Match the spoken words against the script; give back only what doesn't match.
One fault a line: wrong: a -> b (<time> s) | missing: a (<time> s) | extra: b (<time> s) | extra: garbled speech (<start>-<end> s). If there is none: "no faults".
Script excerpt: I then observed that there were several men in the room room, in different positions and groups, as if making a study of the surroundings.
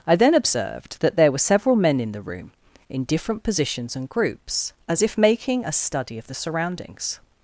missing: room (2.5 s)